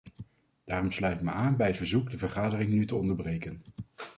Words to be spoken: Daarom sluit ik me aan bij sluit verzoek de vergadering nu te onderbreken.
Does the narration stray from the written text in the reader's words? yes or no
yes